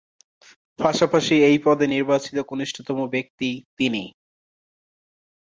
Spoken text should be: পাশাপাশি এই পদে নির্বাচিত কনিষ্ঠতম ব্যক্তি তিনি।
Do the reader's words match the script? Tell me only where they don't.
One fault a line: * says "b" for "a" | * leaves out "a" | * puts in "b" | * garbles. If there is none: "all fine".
all fine